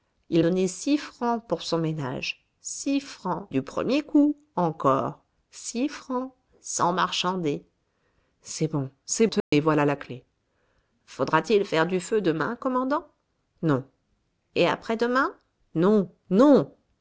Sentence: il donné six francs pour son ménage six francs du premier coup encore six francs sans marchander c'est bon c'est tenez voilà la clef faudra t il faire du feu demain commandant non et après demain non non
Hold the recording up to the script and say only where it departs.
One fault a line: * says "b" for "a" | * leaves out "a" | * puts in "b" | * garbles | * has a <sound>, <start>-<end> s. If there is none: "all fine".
* has a dropout, 9.4-9.5 s